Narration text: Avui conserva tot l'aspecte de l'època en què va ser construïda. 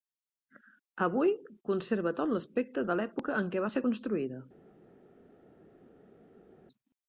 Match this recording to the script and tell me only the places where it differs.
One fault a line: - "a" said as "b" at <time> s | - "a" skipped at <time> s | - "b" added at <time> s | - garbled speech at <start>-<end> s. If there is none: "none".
none